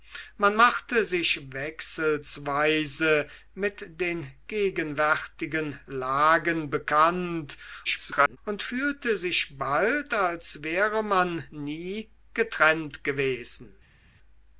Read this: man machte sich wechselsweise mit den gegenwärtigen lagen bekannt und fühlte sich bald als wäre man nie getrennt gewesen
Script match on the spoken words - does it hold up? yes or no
no